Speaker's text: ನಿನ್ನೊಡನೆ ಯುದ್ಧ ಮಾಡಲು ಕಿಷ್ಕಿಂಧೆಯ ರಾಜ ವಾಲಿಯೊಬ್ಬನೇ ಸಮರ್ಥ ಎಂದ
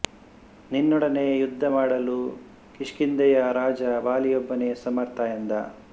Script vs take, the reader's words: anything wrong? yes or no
no